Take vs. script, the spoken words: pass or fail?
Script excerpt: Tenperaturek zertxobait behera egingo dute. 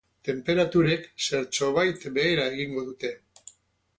pass